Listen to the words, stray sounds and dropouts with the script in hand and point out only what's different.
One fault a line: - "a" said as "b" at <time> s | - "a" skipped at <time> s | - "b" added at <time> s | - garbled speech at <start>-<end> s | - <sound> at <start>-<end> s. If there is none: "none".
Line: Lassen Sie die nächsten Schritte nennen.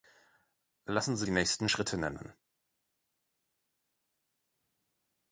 none